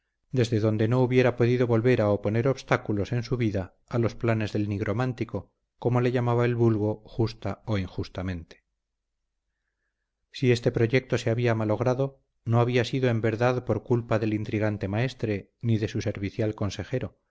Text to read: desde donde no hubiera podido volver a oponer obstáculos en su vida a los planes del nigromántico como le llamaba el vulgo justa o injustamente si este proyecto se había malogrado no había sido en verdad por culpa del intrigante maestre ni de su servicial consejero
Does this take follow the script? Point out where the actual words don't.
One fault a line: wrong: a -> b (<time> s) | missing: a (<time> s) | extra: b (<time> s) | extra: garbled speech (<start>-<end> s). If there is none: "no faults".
no faults